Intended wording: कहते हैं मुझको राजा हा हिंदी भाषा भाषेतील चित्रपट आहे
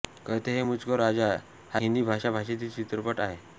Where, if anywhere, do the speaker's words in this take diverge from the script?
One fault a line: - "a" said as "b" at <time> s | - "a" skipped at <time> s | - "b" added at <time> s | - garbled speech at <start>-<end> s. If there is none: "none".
none